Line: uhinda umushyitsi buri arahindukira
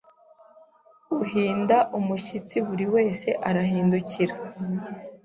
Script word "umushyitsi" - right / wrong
right